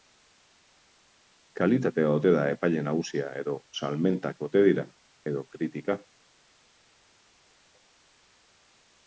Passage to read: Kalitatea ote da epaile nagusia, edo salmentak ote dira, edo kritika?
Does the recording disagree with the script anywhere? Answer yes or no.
no